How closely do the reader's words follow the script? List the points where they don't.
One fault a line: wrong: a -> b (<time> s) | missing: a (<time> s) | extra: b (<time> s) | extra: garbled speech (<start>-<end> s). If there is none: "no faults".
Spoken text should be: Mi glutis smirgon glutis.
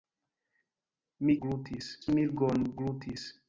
no faults